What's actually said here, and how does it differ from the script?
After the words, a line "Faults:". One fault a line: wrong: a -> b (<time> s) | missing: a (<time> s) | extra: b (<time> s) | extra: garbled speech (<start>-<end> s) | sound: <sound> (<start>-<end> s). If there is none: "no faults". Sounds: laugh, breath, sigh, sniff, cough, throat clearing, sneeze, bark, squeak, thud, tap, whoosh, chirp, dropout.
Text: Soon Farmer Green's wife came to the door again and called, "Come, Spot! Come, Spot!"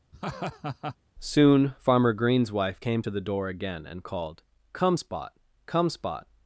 Soon Farmer Green's wife came to the door again and called, "Come, Spot! Come, Spot!"
Faults:
sound: laugh (0.1-1.0 s)